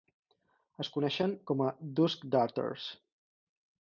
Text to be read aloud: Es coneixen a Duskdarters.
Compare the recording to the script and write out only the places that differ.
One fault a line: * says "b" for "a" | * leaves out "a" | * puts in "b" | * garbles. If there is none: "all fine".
* puts in "com"